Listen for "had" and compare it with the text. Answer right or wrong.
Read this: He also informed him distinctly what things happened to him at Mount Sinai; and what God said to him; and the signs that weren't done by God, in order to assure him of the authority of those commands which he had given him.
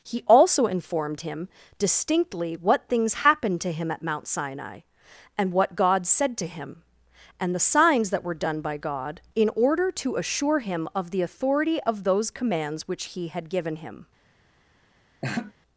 right